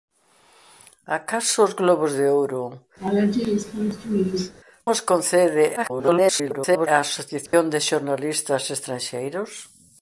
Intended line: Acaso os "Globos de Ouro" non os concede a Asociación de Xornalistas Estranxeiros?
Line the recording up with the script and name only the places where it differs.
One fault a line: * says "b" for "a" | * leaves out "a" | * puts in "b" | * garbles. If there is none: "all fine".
* leaves out "non"
* garbles